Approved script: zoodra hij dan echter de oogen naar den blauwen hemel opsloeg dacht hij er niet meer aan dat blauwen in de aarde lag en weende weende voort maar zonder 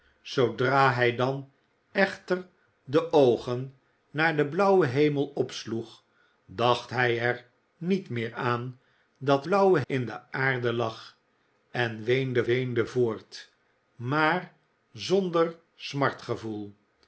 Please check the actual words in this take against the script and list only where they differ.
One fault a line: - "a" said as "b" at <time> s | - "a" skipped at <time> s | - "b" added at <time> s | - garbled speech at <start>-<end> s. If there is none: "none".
none